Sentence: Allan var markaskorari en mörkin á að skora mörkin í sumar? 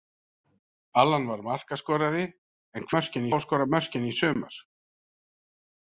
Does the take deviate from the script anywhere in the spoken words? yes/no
no